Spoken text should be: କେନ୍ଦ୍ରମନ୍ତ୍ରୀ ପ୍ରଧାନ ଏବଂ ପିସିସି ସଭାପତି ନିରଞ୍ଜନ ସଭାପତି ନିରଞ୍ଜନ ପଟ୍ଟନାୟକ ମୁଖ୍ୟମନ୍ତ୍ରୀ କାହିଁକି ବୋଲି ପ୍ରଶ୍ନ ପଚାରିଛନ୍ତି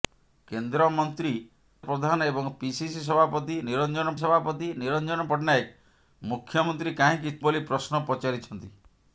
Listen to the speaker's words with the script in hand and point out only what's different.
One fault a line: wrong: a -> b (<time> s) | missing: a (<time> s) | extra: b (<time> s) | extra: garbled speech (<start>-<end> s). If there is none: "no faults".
no faults